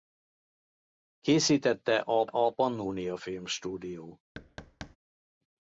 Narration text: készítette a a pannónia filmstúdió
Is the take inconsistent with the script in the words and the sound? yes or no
yes